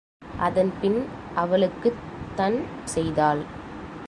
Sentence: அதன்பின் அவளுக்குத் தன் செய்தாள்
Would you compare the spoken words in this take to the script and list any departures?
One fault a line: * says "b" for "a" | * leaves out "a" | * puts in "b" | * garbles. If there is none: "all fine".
all fine